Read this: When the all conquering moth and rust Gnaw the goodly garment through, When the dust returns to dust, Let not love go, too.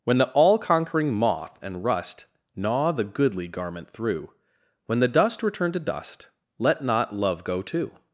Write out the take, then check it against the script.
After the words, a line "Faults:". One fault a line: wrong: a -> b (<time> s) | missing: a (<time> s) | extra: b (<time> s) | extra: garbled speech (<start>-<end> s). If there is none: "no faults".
When the all conquering moth and rust Gnaw the goodly garment through, When the dust return to dust, Let not love go, too.
Faults:
wrong: returns -> return (5.4 s)